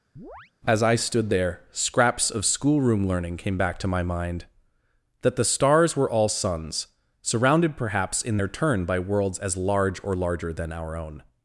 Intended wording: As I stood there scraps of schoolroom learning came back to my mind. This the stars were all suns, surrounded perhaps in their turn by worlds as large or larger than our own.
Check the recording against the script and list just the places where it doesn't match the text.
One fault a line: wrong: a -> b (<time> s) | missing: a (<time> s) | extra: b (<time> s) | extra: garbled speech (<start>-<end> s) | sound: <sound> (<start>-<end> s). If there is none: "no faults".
sound: chirp (0.2-0.5 s)
wrong: This -> That (5.2 s)